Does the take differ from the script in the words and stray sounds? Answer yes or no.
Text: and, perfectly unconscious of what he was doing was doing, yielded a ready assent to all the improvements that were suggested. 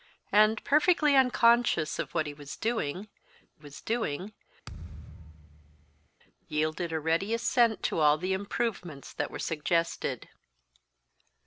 yes